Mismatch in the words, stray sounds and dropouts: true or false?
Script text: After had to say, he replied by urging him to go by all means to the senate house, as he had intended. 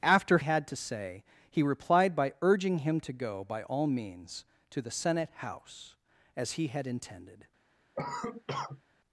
true